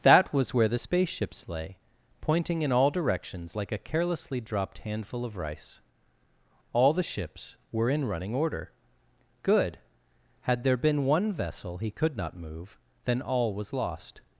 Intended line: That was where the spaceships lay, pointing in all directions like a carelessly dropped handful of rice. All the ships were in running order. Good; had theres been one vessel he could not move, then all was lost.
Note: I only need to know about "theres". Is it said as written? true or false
false